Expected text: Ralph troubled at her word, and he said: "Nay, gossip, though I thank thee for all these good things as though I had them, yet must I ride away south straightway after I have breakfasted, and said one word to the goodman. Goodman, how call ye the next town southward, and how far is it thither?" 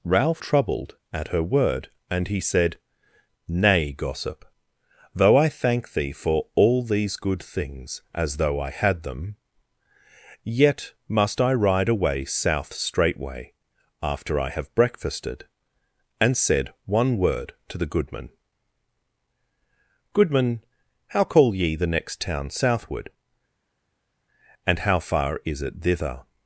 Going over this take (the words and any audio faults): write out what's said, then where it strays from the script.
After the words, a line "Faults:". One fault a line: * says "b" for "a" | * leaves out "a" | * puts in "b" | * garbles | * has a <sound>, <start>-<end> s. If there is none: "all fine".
Ralph troubled at her word, and he said: "Nay, gossip, though I thank thee for all these good things as though I had them, yet must I ride away south straightway after I have breakfasted, and said one word to the goodman. Goodman, how call ye the next town southward, and how far is it thither?"
Faults:
all fine